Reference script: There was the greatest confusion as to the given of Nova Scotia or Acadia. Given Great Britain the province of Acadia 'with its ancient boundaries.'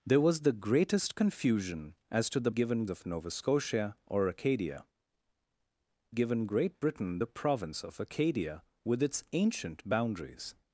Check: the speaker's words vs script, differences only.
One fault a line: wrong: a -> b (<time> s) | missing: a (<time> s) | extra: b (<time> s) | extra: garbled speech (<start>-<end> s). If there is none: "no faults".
no faults